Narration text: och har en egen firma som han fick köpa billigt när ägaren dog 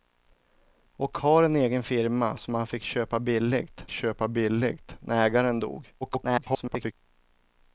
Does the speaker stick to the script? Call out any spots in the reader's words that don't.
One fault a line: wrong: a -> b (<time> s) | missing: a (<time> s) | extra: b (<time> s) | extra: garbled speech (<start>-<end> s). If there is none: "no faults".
extra: köpa billigt (3.9 s)
extra: garbled speech (6.0-6.9 s)